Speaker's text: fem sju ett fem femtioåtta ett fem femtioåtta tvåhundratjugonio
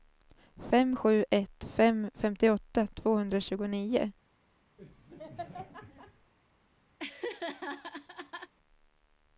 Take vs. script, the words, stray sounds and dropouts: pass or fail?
fail